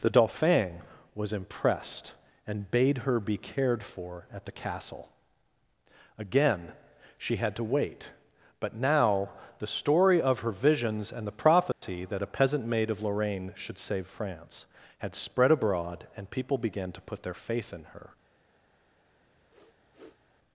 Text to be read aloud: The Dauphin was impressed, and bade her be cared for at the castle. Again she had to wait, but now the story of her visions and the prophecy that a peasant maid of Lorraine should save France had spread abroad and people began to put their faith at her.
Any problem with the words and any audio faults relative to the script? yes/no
yes